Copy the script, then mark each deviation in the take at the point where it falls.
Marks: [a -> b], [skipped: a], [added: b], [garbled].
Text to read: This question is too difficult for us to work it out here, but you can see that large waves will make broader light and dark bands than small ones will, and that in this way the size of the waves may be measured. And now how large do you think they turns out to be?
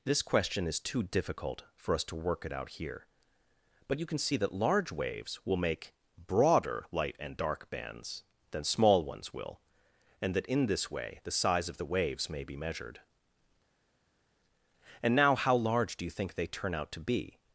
This question is too difficult for us to work it out here, but you can see that large waves will make broader light and dark bands than small ones will, and that in this way the size of the waves may be measured. And now how large do you think they [turns -> turn] out to be?